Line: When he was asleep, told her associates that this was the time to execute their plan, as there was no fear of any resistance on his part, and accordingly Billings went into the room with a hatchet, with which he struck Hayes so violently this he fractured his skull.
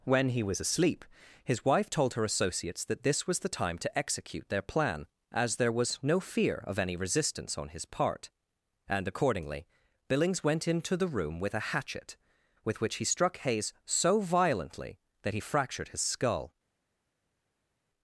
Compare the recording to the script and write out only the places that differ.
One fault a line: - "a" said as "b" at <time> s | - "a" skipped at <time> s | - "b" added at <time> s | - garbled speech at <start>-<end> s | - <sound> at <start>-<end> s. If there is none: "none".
- "his wife" added at 1.4 s
- "this" said as "that" at 15.2 s